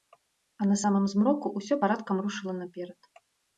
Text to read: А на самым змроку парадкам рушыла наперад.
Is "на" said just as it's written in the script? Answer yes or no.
yes